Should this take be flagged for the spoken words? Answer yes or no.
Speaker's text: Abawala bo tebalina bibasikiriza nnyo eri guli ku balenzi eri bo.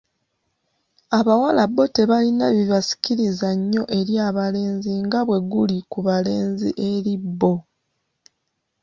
yes